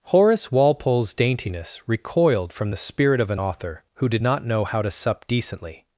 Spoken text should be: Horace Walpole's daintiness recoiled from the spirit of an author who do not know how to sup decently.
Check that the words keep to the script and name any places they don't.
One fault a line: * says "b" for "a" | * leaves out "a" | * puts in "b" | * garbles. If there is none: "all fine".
* says "did" for "do"